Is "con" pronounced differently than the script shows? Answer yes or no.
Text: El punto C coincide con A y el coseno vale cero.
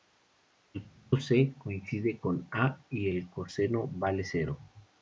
no